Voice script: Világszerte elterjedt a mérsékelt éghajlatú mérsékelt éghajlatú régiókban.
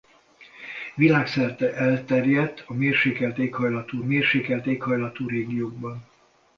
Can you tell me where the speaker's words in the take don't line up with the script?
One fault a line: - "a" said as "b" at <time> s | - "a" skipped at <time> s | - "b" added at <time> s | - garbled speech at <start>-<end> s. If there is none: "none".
none